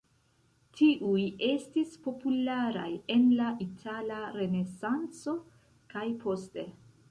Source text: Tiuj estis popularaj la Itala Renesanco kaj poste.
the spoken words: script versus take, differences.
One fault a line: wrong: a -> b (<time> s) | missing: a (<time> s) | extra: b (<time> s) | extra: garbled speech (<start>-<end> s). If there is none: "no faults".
extra: en (3.2 s)